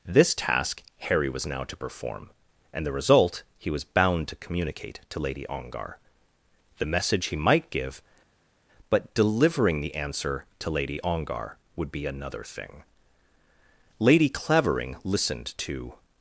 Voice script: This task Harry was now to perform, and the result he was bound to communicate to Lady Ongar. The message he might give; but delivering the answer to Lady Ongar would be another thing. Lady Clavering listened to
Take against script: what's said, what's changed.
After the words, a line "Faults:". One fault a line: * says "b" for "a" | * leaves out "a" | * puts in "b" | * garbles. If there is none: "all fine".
This task Harry was now to perform, and the result he was bound to communicate to Lady Ongar. The message he might give; but delivering the answer to Lady Ongar would be another thing. Lady Clavering listened to
Faults:
all fine